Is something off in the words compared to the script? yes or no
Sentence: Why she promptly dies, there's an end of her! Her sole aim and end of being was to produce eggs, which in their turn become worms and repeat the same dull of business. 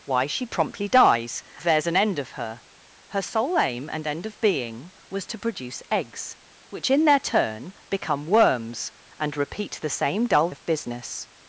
no